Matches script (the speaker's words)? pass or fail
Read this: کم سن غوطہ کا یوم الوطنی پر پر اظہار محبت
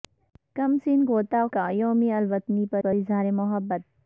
pass